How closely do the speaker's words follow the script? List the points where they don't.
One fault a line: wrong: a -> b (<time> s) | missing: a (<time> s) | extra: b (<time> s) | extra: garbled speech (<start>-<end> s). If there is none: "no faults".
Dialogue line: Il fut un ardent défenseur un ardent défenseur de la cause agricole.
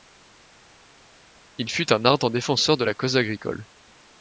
missing: un ardent défenseur (2.8 s)